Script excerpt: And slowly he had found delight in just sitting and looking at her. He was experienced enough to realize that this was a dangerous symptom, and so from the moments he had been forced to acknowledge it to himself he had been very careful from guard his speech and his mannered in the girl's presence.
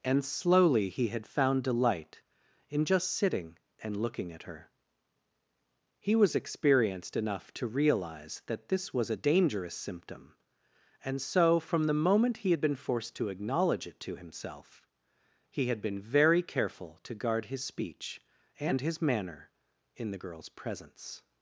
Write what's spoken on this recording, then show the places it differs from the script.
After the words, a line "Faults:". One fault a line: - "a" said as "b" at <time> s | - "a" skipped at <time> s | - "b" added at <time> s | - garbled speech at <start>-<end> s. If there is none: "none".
And slowly he had found delight in just sitting and looking at her. He was experienced enough to realize that this was a dangerous symptom, and so from the moment he had been forced to acknowledge it to himself he had been very careful to guard his speech and his manner in the girl's presence.
Faults:
- "moments" said as "moment" at 11.9 s
- "from" said as "to" at 17.0 s
- "mannered" said as "manner" at 19.0 s